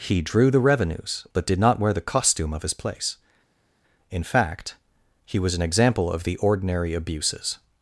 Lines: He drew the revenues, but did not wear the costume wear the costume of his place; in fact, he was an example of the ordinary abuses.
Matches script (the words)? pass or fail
fail